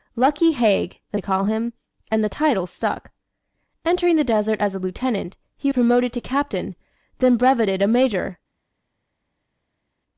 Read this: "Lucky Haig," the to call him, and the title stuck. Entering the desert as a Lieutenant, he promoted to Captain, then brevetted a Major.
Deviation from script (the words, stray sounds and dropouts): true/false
false